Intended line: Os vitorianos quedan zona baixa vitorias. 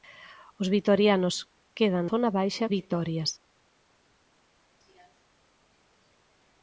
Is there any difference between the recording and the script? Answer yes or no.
no